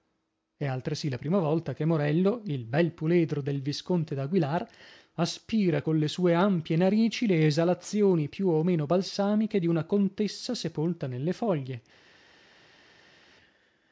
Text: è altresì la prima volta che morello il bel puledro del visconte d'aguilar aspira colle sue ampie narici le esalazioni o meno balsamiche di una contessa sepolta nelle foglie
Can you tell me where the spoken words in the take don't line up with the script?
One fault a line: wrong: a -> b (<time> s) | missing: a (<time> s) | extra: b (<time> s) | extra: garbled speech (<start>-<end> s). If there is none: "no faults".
extra: più (8.3 s)